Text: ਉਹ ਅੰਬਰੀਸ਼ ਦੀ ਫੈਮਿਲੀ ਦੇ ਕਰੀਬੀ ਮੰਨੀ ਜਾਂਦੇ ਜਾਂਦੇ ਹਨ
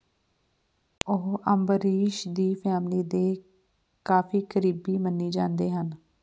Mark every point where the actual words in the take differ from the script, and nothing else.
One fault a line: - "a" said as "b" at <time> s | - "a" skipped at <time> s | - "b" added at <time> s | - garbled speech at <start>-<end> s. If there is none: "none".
- "ਕਾਫੀ" added at 4.1 s
- "ਜਾਂਦੇ" skipped at 5.7 s